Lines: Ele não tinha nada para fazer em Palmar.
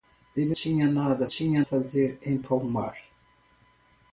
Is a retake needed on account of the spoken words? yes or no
yes